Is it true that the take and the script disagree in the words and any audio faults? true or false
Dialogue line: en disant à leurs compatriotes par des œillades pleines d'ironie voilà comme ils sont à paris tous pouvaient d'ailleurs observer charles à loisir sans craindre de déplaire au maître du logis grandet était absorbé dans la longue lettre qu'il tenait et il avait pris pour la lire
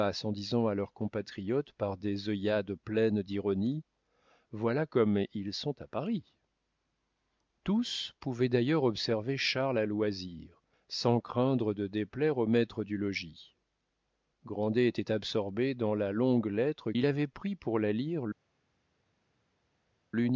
true